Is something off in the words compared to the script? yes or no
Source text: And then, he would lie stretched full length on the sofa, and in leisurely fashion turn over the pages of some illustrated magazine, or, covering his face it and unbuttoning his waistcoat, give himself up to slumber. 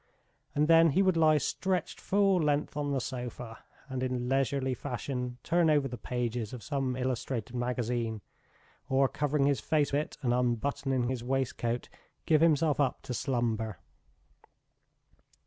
no